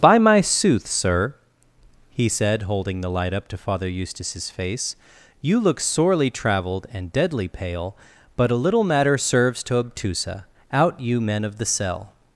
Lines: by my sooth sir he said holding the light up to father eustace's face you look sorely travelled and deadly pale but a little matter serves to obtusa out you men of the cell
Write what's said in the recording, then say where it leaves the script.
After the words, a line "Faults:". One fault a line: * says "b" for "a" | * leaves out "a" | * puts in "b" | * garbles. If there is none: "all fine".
by my sooth sir he said holding the light up to father eustace's face you look sorely travelled and deadly pale but a little matter serves to obtusa out you men of the cell
Faults:
all fine